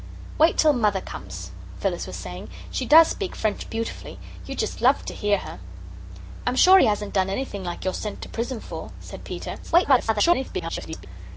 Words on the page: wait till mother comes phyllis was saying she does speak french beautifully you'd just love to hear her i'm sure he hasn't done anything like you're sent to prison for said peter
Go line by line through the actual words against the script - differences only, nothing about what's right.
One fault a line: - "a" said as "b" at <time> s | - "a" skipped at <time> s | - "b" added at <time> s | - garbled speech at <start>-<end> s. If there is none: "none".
- garbled speech at 9.6-11.1 s